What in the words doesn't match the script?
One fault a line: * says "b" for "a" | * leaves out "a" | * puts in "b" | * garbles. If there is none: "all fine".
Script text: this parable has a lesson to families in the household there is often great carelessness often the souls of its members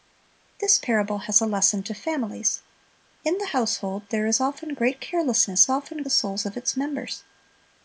all fine